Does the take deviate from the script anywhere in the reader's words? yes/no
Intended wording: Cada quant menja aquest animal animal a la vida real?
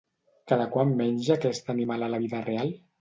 yes